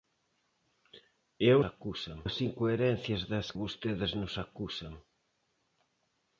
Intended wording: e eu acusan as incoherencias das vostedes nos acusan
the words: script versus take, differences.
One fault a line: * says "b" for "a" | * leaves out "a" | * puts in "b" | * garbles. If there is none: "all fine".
all fine